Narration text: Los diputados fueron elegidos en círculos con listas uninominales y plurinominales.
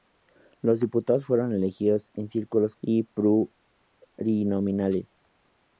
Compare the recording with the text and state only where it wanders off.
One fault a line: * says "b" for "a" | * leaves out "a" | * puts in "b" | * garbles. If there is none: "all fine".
* leaves out "con listas uninominales"